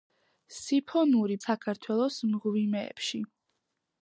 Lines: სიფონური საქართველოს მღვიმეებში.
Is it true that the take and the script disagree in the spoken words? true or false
false